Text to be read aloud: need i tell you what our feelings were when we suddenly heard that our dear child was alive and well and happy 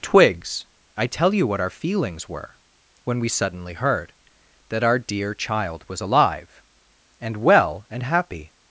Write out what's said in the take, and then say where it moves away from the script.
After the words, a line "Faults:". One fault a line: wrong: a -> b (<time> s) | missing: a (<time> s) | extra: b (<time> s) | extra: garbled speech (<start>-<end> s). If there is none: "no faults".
twigs i tell you what our feelings were when we suddenly heard that our dear child was alive and well and happy
Faults:
wrong: need -> twigs (0.0 s)